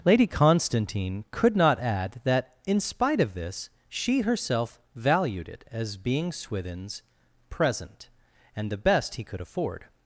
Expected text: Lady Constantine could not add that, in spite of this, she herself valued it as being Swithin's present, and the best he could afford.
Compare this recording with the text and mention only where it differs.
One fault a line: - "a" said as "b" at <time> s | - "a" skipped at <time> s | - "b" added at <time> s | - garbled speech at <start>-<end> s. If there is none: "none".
none